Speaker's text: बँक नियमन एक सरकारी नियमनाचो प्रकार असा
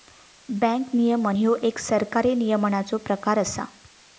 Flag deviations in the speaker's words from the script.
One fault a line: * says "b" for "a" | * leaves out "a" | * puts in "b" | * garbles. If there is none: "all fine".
* puts in "ह्यो"